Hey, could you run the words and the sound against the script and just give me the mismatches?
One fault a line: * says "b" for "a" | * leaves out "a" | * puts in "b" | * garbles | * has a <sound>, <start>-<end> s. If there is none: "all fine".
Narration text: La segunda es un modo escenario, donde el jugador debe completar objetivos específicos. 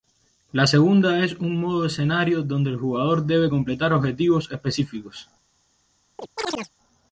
* has a chirp, 6.2-6.7 s